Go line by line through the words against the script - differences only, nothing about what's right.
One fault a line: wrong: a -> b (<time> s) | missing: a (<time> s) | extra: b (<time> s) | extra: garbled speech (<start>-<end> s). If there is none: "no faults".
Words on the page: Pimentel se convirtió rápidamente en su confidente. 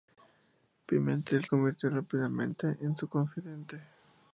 missing: se (1.4 s)